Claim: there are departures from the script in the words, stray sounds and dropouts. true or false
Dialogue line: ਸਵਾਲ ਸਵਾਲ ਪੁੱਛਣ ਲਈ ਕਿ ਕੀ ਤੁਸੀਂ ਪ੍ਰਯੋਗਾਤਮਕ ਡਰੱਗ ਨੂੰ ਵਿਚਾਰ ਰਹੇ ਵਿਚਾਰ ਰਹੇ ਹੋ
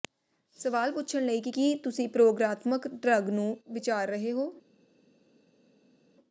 true